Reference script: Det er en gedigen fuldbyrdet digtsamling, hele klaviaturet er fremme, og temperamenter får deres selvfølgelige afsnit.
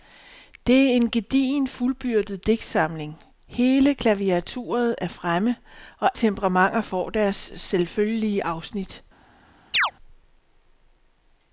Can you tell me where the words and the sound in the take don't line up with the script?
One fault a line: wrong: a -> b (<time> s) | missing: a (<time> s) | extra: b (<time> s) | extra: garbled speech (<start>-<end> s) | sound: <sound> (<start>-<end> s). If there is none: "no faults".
sound: chirp (9.7-9.9 s)